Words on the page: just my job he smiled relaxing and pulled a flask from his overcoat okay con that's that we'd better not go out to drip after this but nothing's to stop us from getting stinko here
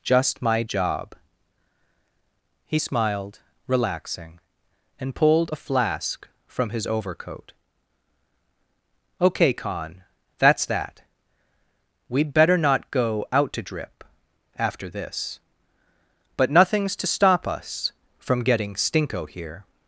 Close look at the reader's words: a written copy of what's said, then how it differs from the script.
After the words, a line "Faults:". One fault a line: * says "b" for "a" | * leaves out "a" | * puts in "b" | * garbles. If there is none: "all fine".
just my job he smiled relaxing and pulled a flask from his overcoat okay con that's that we'd better not go out to drip after this but nothing's to stop us from getting stinko here
Faults:
all fine